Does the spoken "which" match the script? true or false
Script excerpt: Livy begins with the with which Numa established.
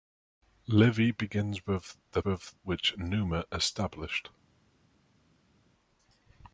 true